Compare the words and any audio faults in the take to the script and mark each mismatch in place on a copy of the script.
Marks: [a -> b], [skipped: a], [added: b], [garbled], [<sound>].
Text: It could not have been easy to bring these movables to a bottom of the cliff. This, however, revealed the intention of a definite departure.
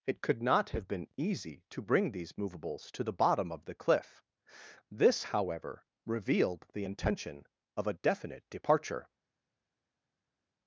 It could not have been easy to bring these movables to [a -> the] bottom of the cliff. This, however, revealed the intention of a definite departure.